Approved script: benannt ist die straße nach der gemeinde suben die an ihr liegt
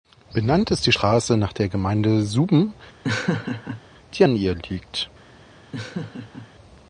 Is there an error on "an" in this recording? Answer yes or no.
no